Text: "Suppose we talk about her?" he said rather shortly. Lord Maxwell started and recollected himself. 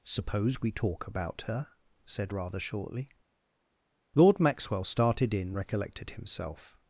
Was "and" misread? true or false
true